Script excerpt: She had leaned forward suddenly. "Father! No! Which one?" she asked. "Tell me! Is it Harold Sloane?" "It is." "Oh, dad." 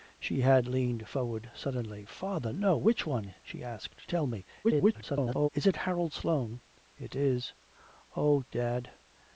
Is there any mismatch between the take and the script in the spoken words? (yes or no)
yes